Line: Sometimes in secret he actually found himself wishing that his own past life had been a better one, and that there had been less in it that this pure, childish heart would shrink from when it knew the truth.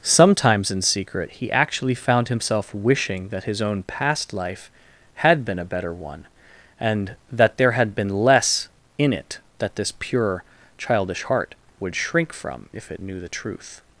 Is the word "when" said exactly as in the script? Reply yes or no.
no